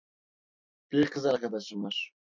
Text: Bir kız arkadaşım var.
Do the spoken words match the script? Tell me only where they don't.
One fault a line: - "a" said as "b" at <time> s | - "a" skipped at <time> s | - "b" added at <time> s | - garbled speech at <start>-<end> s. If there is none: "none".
none